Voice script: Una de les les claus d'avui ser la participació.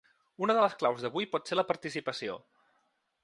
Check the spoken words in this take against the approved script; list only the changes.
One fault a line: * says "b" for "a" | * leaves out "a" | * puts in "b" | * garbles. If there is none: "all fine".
* leaves out "les"
* puts in "pot"